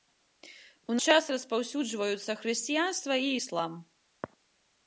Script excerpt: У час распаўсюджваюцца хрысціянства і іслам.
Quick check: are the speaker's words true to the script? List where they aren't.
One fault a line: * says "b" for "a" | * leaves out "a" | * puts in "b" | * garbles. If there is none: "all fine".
all fine